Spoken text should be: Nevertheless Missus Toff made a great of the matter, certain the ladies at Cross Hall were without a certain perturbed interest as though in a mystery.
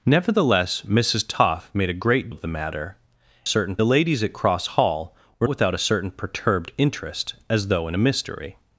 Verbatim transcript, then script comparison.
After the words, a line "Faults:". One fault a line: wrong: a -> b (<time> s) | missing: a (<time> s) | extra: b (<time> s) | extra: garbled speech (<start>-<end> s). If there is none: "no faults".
Nevertheless Missus Toff made a great of the matter, certain the ladies at Cross Hall were without a certain perturbed interest as though in a mystery.
Faults:
no faults